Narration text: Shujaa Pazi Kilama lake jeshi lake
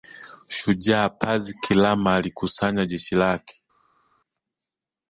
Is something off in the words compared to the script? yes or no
yes